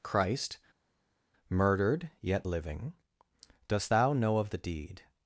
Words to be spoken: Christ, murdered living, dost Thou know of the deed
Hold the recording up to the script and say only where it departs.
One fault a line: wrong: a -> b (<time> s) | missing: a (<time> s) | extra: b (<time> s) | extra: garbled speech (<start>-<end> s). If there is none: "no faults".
extra: yet (2.2 s)